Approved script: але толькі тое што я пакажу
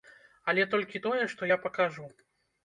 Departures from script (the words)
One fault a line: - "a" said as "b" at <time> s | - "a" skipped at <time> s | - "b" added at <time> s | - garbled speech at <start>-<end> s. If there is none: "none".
none